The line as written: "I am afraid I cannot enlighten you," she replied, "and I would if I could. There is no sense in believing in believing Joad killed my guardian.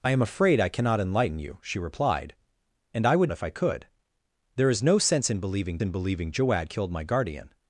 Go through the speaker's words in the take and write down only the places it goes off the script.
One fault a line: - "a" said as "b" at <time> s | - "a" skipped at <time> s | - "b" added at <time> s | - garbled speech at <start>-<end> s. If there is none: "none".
none